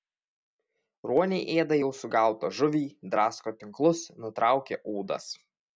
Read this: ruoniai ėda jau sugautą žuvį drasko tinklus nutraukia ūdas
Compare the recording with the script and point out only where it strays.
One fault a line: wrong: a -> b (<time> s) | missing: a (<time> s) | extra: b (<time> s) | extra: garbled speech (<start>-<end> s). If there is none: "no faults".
no faults